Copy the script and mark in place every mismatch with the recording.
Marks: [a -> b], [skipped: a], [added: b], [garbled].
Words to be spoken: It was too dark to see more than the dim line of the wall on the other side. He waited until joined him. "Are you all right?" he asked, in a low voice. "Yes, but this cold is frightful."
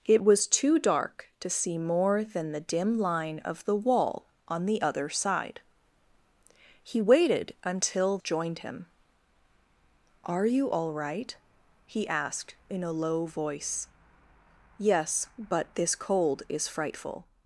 It was too dark to see more than the dim line of the wall on the other side. He waited until joined him. "Are you all right?" he asked, in a low voice. "Yes, but this cold is frightful."